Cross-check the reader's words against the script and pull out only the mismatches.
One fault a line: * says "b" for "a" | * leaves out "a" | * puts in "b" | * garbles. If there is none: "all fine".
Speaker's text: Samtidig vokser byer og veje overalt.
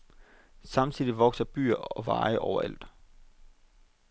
all fine